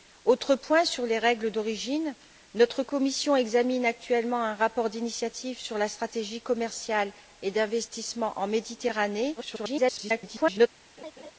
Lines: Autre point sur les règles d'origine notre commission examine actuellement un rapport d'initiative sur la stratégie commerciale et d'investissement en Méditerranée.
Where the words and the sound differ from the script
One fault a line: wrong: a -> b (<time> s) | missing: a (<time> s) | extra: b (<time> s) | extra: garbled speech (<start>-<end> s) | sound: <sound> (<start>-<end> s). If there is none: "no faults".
extra: garbled speech (9.4-10.7 s)
sound: laugh (11.0-11.3 s)